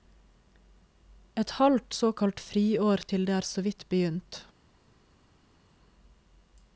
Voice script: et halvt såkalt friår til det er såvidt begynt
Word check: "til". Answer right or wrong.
right